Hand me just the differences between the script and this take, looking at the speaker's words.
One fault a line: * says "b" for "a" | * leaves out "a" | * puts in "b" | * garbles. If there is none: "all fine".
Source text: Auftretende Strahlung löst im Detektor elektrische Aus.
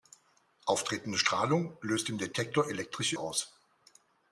all fine